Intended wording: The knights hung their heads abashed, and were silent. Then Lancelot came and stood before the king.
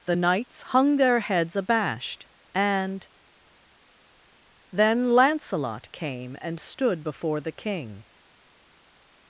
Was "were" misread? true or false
true